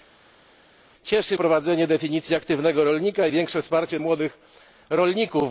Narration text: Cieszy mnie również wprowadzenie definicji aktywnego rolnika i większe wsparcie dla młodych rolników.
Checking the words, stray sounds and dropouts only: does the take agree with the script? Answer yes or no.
no